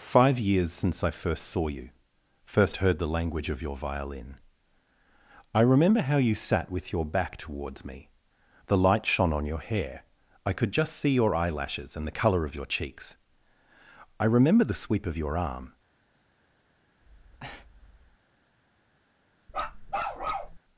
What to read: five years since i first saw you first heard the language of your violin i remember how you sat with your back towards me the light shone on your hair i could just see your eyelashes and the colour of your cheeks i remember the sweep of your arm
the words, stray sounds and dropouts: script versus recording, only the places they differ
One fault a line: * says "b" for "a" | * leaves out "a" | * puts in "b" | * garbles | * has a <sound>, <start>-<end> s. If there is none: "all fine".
* has a breath, 17.0-18.2 s
* has a bark, 19.5-20.6 s